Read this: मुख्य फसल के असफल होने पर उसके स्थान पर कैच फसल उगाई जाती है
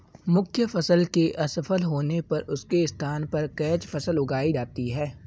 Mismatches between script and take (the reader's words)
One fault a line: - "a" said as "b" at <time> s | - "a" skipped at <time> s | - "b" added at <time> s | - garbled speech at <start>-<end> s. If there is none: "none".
none